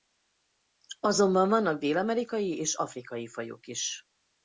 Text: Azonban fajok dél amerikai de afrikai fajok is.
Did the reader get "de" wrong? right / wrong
wrong